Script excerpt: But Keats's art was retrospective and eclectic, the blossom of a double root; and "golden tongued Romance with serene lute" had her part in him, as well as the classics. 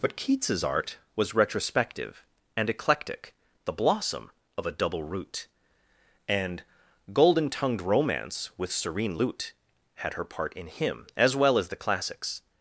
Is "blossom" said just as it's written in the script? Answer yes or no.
yes